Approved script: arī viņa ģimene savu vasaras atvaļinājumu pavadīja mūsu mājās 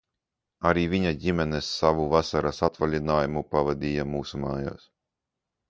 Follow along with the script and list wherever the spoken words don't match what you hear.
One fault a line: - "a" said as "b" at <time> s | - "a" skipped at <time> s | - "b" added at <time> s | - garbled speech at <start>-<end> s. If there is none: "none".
none